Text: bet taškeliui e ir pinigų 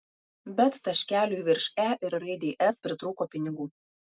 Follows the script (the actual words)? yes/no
no